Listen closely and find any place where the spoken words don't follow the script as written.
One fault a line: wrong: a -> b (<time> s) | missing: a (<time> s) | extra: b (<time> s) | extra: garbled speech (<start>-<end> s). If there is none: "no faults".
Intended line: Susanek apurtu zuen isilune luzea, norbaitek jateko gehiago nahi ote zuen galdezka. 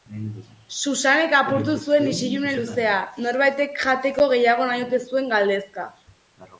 no faults